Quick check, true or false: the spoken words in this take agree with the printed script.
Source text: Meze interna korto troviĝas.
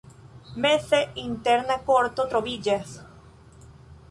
true